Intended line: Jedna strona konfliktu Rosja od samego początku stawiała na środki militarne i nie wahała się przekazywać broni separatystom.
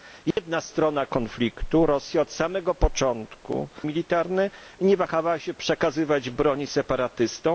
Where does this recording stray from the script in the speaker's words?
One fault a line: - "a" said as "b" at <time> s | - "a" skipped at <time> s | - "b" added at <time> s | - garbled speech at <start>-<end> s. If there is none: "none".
- "stawiała na środki" skipped at 3.7 s